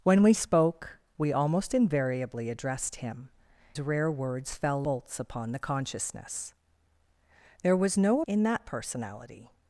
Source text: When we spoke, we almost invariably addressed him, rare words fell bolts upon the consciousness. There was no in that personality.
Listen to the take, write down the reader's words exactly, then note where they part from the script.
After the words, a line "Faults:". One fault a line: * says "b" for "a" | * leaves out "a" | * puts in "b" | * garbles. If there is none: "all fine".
When we spoke, we almost invariably addressed him, rare words fell bolts upon the consciousness. There was no in that personality.
Faults:
all fine